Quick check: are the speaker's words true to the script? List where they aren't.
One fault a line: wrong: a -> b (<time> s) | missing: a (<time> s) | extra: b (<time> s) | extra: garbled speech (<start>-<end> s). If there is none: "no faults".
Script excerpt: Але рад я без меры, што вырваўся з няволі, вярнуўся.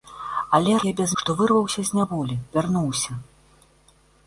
missing: рад (0.8 s)
missing: меры (1.1 s)